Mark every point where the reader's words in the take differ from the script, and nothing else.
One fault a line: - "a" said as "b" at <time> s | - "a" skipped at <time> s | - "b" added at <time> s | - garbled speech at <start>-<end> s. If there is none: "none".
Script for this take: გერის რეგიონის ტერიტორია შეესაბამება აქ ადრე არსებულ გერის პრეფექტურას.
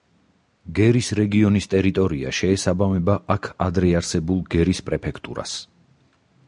none